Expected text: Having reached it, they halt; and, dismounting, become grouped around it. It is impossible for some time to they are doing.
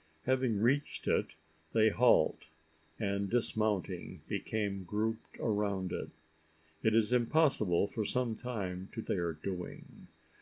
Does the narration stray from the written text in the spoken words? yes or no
no